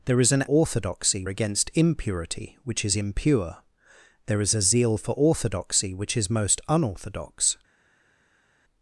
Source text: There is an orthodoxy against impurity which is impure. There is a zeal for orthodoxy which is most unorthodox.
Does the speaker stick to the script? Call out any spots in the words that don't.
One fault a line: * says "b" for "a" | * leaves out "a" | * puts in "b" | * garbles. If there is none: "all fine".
all fine